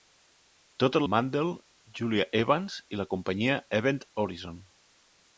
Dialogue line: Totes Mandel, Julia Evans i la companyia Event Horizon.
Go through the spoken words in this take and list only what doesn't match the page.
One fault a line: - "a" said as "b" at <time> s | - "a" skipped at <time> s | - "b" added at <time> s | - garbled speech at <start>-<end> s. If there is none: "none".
none